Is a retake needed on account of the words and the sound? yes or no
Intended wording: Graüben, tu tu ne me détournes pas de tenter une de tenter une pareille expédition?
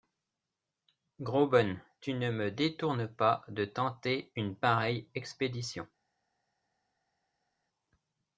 yes